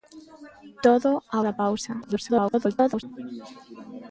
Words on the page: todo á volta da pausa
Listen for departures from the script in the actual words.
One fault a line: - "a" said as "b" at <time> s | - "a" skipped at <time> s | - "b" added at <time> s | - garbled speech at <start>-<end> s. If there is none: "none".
- "volta" skipped at 1.4 s
- garbled speech at 2.0-3.0 s